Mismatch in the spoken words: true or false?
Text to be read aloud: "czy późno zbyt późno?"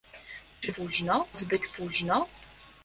false